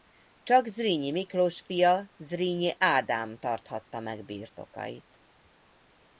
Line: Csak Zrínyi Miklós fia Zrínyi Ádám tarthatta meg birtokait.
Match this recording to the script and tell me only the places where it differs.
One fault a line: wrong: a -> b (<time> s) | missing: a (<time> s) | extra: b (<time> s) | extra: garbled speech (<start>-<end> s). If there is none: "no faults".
no faults